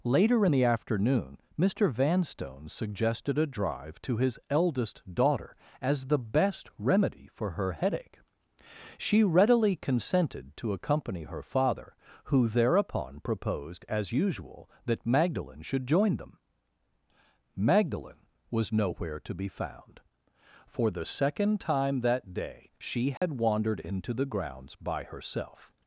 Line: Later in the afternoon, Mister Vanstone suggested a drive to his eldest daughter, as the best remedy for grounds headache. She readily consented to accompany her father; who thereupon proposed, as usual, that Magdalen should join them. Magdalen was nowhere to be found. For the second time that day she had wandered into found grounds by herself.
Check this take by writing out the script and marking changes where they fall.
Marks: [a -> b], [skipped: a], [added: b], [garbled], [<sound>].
Later in the afternoon, Mister Vanstone suggested a drive to his eldest daughter, as the best remedy for [grounds -> her] headache. She readily consented to accompany her father; who thereupon proposed, as usual, that Magdalen should join them. Magdalen was nowhere to be found. For the second time that day she had [dropout] wandered into [found -> the] grounds by herself.